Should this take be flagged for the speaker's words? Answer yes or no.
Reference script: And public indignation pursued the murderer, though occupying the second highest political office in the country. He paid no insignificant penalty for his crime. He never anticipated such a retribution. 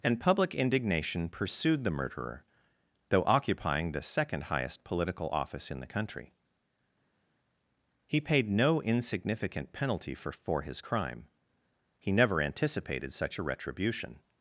yes